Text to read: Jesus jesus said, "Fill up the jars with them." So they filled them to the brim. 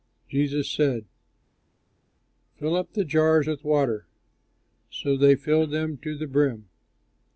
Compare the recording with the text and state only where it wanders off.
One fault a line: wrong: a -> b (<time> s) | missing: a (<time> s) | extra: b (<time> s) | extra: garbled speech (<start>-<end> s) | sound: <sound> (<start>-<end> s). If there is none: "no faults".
missing: jesus (0.7 s)
wrong: them -> water (3.6 s)